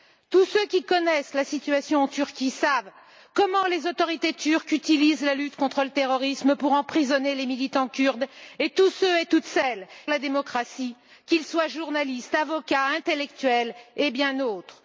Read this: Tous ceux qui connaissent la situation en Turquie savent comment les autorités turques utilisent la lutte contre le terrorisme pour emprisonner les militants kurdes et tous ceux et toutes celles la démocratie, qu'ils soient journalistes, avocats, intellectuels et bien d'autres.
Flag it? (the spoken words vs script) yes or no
no